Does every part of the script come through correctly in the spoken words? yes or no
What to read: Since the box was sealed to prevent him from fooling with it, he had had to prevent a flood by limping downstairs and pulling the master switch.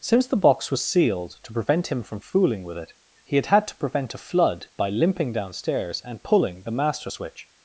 yes